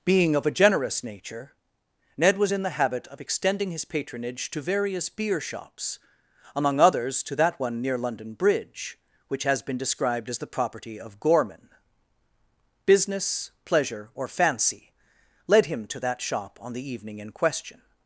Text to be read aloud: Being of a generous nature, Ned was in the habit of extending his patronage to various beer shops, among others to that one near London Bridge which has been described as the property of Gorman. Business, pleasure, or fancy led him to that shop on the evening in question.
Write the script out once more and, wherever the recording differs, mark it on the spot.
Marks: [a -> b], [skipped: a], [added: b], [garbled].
Being of a generous nature, Ned was in the habit of extending his patronage to various beer shops, among others to that one near London Bridge which has been described as the property of Gorman. Business, pleasure, or fancy led him to that shop on the evening in question.